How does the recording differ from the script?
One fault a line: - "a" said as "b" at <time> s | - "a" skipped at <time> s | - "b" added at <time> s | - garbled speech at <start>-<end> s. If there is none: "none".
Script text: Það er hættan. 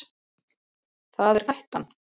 none